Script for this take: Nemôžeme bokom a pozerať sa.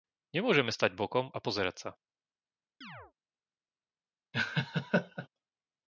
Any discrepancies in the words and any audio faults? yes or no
yes